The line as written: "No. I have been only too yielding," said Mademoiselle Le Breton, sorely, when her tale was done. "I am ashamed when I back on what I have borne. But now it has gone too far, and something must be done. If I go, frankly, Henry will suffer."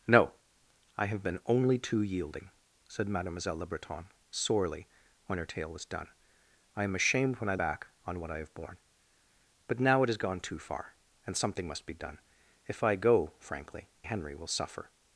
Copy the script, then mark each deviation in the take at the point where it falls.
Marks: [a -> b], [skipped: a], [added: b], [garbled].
"No. I have been only too yielding," said Mademoiselle Le Breton, sorely, when her tale was done. "I am ashamed when I back on what I have borne. But now it has gone too far, and something must be done. If I go, frankly, Henry will suffer."